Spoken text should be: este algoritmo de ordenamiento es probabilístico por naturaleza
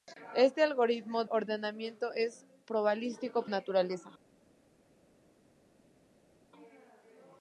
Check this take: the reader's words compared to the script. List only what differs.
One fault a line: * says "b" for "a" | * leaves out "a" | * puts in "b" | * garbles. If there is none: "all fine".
* leaves out "de"
* leaves out "por"